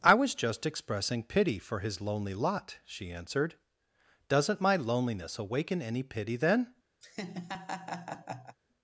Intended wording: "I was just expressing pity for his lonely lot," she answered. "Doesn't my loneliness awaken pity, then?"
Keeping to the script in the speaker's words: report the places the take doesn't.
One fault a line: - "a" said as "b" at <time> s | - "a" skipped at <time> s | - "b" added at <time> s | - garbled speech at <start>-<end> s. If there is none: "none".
- "any" added at 5.8 s